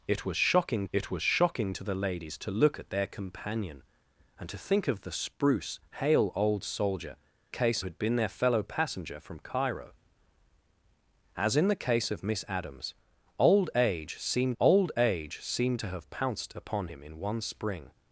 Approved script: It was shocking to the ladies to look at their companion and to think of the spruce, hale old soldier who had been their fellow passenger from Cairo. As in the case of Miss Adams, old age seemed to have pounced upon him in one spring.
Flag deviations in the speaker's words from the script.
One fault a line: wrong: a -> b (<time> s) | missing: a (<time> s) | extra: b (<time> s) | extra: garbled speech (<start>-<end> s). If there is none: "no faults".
extra: it was shocking (0.9 s)
wrong: who -> case (7.5 s)
extra: old age seemed (14.6 s)